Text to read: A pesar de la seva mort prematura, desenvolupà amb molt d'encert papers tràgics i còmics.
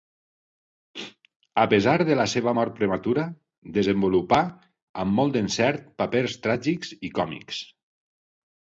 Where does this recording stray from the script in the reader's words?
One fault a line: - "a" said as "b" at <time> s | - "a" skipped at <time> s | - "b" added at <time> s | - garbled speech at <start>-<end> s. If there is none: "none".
none